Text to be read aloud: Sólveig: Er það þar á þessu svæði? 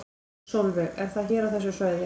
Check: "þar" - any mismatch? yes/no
yes